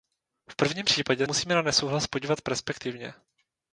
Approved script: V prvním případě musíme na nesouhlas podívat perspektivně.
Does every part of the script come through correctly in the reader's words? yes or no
yes